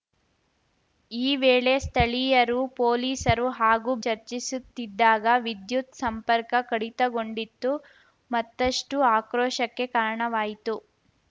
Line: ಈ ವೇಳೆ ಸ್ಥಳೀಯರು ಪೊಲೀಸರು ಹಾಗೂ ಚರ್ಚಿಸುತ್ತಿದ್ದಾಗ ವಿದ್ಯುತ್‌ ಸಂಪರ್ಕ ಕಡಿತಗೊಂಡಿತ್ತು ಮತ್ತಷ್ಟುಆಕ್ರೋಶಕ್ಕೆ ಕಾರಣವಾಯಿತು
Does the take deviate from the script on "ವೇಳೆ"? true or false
false